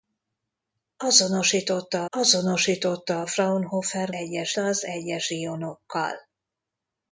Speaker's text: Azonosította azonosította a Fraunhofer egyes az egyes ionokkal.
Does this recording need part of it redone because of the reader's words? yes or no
no